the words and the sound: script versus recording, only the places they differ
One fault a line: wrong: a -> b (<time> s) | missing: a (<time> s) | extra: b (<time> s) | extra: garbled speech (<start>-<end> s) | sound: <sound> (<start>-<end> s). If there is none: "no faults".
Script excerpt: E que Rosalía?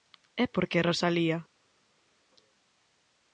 extra: por (0.5 s)